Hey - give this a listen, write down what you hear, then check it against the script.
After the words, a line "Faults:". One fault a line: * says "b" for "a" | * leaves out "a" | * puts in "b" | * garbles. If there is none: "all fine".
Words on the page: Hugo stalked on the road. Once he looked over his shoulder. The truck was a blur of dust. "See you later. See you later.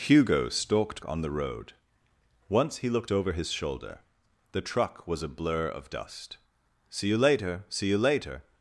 Hugo stalked on the road. Once he looked over his shoulder. The truck was a blur of dust. "See you later. See you later.
Faults:
all fine